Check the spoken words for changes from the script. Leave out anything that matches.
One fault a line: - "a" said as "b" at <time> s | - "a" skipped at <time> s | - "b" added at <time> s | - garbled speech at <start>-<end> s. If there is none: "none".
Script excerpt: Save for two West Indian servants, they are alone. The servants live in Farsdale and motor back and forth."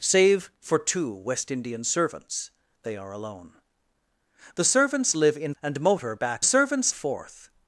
- "Farsdale" skipped at 5.5 s
- "and" said as "servants" at 6.4 s